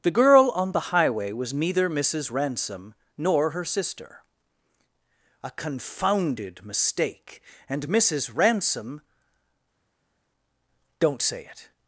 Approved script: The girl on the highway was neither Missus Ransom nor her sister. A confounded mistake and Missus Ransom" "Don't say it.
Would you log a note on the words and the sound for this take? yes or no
no